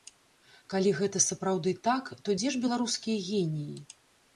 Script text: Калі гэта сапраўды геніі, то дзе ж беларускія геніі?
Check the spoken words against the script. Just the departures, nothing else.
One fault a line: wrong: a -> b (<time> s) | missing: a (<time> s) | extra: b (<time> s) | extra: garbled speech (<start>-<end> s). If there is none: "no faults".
wrong: геніі -> так (1.9 s)